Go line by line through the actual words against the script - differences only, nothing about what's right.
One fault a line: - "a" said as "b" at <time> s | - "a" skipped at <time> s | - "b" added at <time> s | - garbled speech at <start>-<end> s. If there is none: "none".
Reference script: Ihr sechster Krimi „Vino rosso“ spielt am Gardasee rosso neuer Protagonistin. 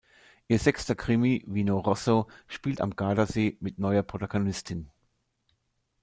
- "rosso" said as "mit" at 3.6 s